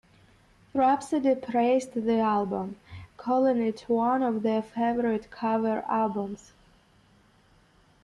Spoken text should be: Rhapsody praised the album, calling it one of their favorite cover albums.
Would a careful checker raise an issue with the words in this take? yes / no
no